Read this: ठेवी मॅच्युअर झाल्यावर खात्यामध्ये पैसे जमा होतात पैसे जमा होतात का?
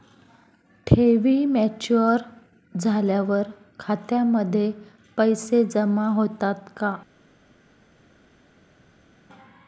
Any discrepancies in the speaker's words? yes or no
yes